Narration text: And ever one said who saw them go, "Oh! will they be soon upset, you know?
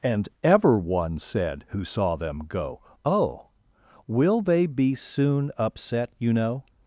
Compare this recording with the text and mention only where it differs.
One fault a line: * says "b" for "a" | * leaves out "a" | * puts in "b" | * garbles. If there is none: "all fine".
all fine